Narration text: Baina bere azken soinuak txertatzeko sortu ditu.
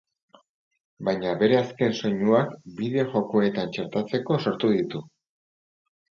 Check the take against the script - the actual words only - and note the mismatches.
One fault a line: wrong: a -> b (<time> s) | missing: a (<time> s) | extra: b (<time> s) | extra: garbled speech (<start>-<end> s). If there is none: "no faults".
extra: bideo jokoetan (2.8 s)